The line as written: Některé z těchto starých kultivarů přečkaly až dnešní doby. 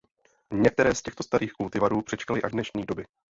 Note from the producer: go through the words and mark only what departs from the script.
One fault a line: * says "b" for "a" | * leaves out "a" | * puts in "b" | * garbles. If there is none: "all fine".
all fine